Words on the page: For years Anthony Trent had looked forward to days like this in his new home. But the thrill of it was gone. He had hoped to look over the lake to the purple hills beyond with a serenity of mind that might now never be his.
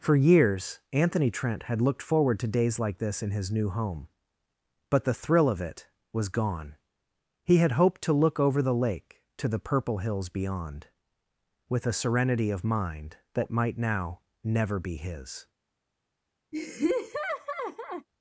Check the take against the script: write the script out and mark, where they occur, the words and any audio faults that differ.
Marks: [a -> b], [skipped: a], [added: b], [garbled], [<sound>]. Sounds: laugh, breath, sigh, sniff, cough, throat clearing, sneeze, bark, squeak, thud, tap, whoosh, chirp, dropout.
For years Anthony Trent had looked forward to days like this in his new home. But the thrill of it was gone. He had hoped to look over the lake to the purple hills beyond with a serenity of mind that might now never be his. [laugh]